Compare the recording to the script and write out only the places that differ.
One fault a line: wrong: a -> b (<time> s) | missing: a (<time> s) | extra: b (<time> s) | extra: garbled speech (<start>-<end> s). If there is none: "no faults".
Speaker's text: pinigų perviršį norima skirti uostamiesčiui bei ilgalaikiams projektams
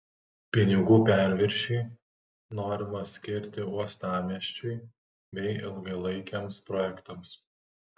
no faults